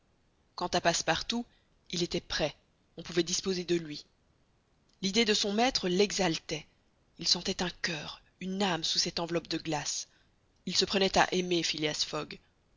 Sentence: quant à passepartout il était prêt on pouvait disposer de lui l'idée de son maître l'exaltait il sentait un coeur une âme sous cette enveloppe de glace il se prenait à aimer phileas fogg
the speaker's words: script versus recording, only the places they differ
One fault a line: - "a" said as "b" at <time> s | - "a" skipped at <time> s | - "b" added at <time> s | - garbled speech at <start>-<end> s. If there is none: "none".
none